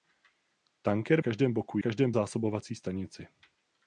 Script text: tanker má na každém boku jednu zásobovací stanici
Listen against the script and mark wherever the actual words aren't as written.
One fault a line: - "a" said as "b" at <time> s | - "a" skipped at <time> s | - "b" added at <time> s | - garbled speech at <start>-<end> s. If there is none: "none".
- "má na" skipped at 1.2 s
- "jednu" said as "každém" at 1.8 s